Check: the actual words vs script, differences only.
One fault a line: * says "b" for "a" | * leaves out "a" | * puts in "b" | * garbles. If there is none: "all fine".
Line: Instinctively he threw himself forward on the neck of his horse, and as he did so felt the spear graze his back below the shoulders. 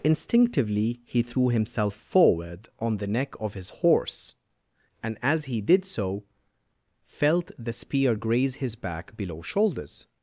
* leaves out "the"